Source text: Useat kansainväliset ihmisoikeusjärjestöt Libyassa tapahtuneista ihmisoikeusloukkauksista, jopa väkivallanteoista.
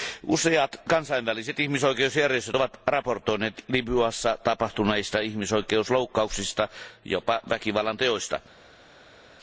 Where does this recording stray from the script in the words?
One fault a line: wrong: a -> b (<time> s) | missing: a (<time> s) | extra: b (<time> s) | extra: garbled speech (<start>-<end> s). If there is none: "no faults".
extra: ovat raportoineet (2.5 s)